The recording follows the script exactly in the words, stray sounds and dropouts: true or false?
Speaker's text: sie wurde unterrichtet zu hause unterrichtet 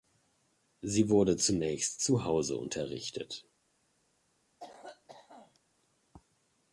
false